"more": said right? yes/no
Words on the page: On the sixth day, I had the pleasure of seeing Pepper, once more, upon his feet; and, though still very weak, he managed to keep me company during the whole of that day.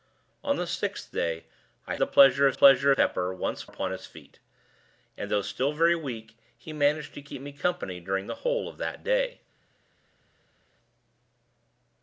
no